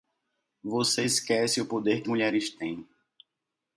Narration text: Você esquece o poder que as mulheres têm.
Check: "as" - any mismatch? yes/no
yes